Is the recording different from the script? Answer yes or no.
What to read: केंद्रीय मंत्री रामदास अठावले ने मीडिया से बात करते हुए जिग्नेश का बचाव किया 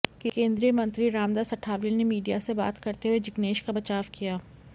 no